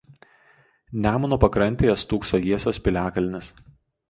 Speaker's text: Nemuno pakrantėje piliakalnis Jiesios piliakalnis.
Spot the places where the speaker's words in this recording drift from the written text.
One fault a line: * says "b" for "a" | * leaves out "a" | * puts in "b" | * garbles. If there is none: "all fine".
* says "stūkso" for "piliakalnis"